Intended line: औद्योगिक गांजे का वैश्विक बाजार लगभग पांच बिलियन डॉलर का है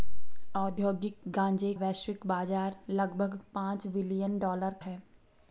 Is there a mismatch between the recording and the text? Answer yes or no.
yes